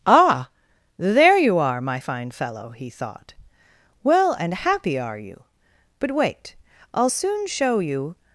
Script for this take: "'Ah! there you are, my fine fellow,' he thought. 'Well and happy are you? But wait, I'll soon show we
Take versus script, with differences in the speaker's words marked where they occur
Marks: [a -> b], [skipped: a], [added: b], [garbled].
"'Ah! there you are, my fine fellow,' he thought. 'Well and happy are you? But wait, I'll soon show [we -> you]